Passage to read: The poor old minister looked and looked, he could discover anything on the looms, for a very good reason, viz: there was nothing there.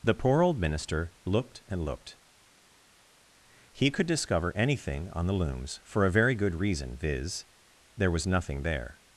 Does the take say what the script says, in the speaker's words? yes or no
yes